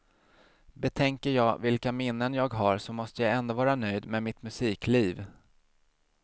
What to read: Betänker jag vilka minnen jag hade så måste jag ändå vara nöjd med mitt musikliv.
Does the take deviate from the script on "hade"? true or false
true